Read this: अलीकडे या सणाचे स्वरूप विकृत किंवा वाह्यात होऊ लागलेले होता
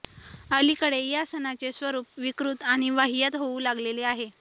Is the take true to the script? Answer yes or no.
no